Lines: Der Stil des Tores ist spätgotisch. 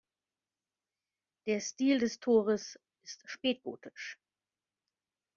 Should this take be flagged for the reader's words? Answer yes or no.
no